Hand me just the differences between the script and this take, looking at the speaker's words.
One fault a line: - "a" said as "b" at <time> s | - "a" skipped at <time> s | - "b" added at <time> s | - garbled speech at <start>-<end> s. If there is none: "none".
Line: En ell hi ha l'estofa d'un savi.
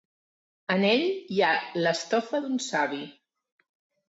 none